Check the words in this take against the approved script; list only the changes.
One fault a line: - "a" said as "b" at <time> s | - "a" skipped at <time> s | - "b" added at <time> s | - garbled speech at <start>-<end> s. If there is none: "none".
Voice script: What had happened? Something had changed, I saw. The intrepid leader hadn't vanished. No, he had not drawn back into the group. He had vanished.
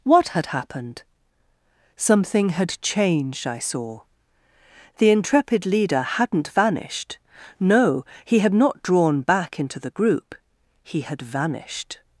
none